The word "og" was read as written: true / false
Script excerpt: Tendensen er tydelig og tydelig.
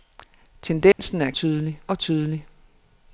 true